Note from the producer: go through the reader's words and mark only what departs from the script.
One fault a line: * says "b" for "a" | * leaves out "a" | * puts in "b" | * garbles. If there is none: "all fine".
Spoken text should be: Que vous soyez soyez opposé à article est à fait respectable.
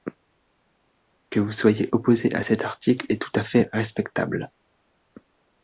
* leaves out "soyez"
* puts in "cet"
* puts in "tout"